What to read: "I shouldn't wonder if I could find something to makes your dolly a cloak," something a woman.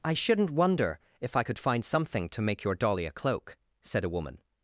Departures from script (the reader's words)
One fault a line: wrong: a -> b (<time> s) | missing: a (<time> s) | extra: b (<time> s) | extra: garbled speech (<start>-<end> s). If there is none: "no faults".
wrong: makes -> make (2.4 s)
wrong: something -> said (3.8 s)